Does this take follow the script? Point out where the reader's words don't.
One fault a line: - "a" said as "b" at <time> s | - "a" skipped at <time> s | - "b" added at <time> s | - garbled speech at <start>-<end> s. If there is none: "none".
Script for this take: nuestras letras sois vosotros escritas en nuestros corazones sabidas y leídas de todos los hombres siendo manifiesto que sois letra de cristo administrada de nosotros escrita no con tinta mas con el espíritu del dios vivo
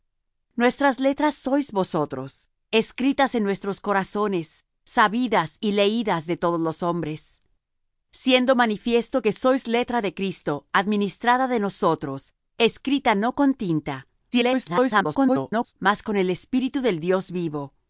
- garbled speech at 14.3-15.7 s